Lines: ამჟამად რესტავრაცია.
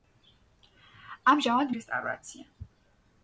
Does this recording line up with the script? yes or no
yes